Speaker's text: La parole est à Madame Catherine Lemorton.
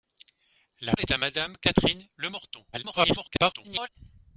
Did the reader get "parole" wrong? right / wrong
wrong